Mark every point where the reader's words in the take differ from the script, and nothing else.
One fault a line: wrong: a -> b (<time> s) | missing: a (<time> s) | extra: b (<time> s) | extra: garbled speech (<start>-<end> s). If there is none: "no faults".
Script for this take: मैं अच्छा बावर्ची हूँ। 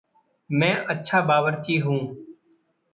no faults